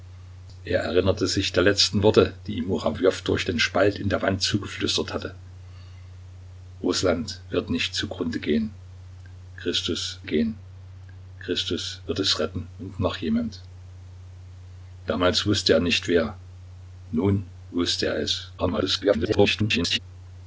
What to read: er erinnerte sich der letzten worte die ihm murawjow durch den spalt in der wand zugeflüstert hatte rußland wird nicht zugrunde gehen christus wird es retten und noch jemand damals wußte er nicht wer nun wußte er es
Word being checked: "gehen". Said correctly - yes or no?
yes